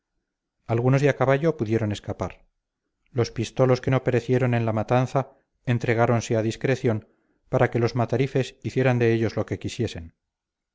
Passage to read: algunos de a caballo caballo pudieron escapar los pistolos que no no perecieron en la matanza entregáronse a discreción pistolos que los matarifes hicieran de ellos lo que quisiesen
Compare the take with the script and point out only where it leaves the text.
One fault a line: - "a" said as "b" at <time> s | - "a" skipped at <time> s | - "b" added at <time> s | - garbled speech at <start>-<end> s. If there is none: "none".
- "caballo" skipped at 1.6 s
- "no" skipped at 4.0 s
- "pistolos" said as "para" at 7.5 s